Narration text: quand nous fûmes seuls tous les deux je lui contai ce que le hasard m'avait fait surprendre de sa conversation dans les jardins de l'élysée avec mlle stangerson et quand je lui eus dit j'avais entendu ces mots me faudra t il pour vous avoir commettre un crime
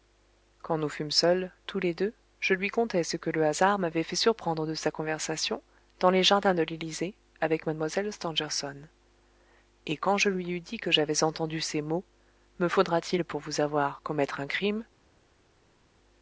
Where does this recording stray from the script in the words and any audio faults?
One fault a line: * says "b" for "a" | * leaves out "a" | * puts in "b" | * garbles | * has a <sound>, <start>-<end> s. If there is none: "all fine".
* puts in "que"